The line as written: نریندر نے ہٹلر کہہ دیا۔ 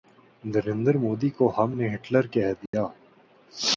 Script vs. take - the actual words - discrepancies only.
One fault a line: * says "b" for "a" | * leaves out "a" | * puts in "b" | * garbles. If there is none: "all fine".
* puts in "مودی کو ہم"